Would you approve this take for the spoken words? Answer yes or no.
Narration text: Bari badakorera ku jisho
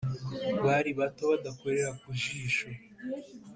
no